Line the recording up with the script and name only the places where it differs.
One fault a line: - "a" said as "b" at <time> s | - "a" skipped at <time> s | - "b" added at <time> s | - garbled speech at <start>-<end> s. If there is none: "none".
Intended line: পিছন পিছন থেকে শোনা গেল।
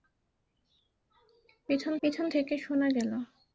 none